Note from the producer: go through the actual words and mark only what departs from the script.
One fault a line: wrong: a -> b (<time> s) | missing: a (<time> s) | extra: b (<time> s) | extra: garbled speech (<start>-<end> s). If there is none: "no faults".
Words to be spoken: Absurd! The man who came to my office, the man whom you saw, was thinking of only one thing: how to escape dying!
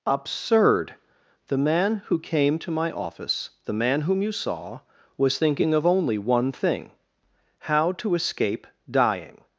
no faults